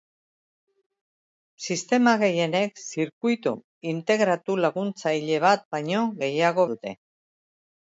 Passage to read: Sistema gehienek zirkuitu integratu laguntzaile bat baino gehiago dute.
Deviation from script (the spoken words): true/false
false